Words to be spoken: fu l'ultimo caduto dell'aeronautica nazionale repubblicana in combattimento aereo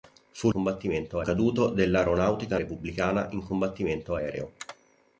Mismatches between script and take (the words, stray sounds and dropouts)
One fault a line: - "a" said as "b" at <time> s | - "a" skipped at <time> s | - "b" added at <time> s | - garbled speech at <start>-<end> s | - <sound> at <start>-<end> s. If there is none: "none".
- "l'ultimo" said as "combattimento" at 0.5 s
- "nazionale" skipped at 2.6 s